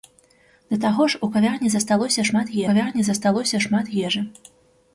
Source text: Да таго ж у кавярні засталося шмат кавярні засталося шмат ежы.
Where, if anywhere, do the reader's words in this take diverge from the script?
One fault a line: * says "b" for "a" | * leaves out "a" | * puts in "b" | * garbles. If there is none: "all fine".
all fine